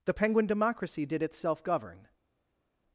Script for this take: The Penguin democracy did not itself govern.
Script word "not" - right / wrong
wrong